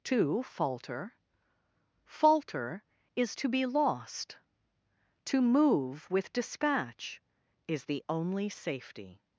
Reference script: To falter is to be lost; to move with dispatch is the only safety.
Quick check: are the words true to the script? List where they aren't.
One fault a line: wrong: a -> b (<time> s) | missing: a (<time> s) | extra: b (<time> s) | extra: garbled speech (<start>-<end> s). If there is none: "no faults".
extra: falter (2.0 s)